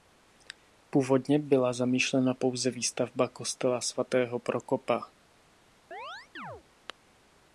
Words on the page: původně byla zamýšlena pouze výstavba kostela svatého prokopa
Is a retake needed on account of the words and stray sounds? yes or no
yes